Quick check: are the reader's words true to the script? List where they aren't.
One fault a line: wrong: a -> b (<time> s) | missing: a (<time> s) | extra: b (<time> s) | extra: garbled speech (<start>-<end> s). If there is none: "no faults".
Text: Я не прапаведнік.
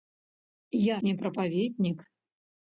no faults